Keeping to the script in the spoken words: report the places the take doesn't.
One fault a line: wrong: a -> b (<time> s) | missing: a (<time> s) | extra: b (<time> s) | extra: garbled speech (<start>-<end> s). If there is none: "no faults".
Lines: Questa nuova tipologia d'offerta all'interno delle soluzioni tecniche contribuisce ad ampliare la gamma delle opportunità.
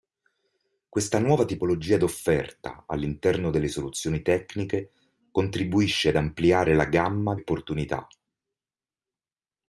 missing: delle (7.4 s)